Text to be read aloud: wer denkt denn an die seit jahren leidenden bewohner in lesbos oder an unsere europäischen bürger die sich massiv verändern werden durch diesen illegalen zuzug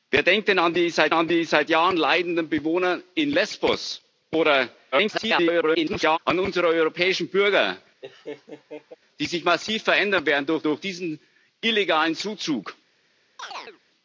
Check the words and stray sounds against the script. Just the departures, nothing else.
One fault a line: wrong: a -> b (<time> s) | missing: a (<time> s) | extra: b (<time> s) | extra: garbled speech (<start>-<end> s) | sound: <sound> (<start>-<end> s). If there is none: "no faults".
extra: an die seit (1.1 s)
extra: garbled speech (4.9-6.2 s)
sound: laugh (8.0-9.0 s)
extra: durch (10.6 s)
sound: chirp (13.4-13.8 s)